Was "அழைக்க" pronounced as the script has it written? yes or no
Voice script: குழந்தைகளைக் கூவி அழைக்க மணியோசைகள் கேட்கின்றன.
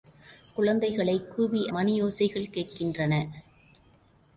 no